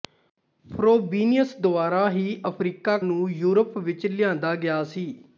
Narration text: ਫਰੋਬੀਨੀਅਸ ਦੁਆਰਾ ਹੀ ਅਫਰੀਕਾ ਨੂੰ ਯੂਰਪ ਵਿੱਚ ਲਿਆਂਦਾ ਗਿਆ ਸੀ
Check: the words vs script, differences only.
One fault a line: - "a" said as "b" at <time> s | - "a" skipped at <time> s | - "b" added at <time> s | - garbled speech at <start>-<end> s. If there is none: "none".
none